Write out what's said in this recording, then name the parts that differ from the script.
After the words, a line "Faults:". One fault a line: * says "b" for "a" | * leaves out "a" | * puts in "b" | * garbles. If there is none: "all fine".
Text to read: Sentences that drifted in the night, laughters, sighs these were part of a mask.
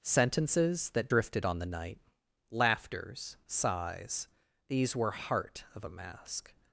Sentences that drifted on the night, laughters, sighs these were heart of a mask.
Faults:
* says "on" for "in"
* says "heart" for "part"